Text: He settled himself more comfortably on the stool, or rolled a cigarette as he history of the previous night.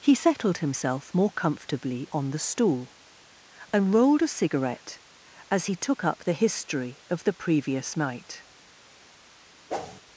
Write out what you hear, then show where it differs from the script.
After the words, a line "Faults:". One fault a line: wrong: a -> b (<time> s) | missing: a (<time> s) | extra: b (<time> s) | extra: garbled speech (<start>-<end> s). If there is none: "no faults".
He settled himself more comfortably on the stool, and rolled a cigarette as he took up the history of the previous night.
Faults:
wrong: or -> and (3.7 s)
extra: took up the (5.7 s)